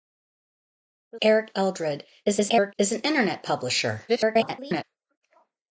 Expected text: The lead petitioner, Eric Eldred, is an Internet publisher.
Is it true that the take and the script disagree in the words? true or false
true